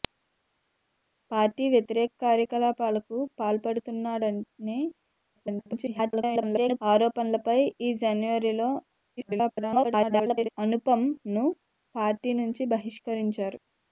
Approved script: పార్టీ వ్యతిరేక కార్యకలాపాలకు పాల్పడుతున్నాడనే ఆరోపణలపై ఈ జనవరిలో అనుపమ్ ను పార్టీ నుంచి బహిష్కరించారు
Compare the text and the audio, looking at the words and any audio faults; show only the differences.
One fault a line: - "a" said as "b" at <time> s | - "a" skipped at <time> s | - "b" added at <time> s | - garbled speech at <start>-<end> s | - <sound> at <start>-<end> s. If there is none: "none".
- garbled speech at 5.4-6.8 s
- garbled speech at 9.2-10.5 s